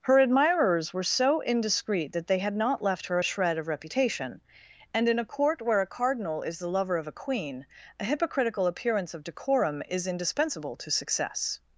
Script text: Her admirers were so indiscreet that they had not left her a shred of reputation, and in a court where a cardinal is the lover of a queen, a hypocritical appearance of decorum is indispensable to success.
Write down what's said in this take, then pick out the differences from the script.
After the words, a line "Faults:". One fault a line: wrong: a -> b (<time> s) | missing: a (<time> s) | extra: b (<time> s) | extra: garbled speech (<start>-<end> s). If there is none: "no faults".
Her admirers were so indiscreet that they had not left her a shred of reputation, and in a court where a cardinal is the lover of a queen, a hypocritical appearance of decorum is indispensable to success.
Faults:
no faults